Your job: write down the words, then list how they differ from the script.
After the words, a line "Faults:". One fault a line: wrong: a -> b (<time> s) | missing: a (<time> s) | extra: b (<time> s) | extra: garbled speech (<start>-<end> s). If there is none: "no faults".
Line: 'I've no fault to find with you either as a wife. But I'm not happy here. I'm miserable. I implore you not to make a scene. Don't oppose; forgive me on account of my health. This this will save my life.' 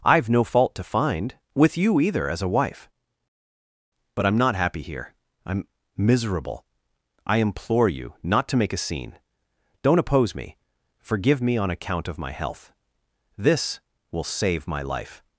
'I've no fault to find with you either as a wife. But I'm not happy here. I'm miserable. I implore you not to make a scene. Don't oppose me; forgive me on account of my health. This will save my life.'
Faults:
extra: me (10.3 s)
missing: this (13.8 s)